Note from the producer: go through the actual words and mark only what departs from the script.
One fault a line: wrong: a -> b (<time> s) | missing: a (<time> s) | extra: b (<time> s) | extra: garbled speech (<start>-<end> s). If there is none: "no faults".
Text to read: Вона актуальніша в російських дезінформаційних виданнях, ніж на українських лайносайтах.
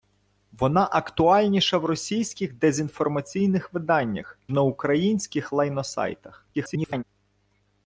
missing: ніж (4.4 s)
extra: garbled speech (6.5-7.0 s)